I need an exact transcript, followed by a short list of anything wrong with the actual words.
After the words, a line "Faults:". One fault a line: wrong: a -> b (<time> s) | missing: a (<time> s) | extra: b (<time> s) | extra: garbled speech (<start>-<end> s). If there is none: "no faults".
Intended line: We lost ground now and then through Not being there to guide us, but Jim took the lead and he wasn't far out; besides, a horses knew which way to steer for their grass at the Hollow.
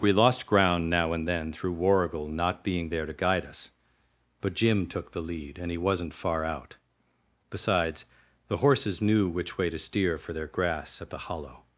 We lost ground now and then through Warrigal not being there to guide us, but Jim took the lead and he wasn't far out; besides, the horses knew which way to steer for their grass at the Hollow.
Faults:
extra: Warrigal (1.7 s)
wrong: a -> the (8.5 s)